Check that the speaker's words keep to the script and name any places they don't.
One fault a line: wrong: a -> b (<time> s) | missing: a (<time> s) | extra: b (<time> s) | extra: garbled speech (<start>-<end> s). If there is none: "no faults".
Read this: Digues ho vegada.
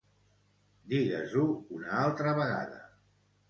extra: una altra (1.8 s)